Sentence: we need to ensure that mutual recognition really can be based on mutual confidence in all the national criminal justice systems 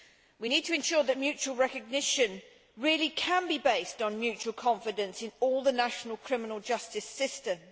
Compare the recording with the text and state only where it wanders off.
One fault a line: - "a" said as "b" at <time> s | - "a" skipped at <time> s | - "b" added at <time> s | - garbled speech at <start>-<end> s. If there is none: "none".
none